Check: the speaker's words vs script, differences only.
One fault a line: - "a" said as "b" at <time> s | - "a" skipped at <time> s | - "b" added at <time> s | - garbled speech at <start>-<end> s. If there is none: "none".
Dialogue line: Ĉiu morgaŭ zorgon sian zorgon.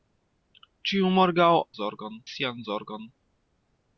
none